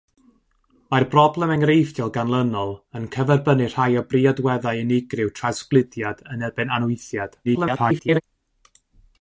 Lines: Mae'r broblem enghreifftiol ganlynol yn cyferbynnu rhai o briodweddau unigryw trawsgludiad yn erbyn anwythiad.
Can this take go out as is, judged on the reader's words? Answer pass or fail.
fail